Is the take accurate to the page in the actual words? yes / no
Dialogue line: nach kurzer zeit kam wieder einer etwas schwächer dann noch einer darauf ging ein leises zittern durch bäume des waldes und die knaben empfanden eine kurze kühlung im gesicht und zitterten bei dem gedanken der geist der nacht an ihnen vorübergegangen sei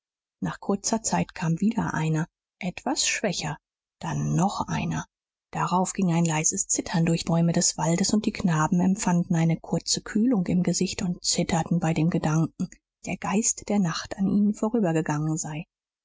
yes